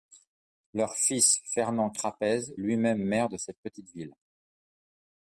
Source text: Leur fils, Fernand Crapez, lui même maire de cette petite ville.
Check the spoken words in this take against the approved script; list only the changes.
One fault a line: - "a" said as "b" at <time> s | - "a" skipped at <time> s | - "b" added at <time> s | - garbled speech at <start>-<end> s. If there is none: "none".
none